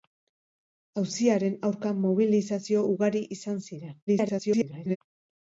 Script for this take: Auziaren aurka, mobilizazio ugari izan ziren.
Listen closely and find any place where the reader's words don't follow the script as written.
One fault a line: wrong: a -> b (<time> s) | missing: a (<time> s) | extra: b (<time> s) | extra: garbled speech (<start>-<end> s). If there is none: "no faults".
extra: garbled speech (4.1-5.0 s)